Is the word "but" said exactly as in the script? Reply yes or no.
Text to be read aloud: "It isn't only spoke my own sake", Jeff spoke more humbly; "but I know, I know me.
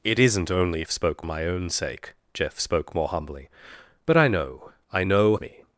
yes